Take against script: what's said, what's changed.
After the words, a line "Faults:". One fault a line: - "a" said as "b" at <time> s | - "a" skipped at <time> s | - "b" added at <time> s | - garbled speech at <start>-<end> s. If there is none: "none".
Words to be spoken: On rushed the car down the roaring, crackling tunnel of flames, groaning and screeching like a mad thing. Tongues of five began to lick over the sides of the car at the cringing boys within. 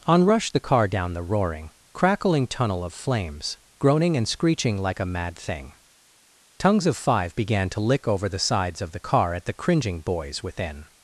On rushed the car down the roaring, crackling tunnel of flames, groaning and screeching like a mad thing. Tongues of five began to lick over the sides of the car at the cringing boys within.
Faults:
none